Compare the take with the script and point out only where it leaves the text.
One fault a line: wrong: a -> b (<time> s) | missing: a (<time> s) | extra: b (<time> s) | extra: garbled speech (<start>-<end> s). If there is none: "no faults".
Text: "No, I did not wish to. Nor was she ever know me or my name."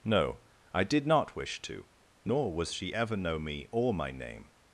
no faults